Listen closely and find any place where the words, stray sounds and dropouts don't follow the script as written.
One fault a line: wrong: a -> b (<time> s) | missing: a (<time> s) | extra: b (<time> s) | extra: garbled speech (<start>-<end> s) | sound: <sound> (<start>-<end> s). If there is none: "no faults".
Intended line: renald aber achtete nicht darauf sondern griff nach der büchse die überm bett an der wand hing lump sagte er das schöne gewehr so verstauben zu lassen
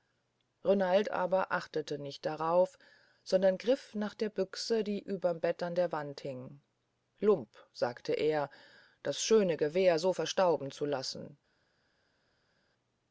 no faults